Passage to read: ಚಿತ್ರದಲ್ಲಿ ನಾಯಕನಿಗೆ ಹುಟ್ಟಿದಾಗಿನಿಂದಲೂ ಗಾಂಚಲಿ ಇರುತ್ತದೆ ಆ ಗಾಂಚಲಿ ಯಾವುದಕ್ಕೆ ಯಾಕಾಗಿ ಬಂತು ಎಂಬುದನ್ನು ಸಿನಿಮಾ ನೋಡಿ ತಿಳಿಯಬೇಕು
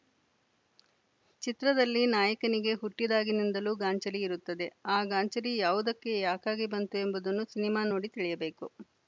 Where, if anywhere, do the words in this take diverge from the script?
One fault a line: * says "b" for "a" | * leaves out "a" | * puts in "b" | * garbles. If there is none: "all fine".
all fine